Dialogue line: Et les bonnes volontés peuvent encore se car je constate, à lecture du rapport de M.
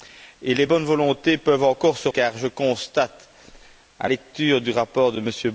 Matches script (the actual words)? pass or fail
pass